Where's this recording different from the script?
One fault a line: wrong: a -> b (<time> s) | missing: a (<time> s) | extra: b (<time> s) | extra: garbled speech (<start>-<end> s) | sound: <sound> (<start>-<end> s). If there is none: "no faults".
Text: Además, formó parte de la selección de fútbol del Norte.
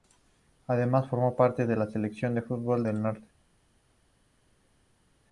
no faults